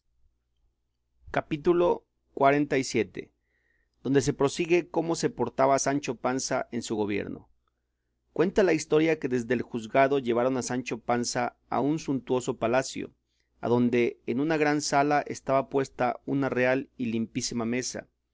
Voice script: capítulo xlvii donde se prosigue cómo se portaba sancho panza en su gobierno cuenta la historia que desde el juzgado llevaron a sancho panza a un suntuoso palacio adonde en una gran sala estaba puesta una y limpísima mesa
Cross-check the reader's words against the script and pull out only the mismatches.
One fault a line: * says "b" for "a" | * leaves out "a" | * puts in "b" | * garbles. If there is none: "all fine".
* puts in "real"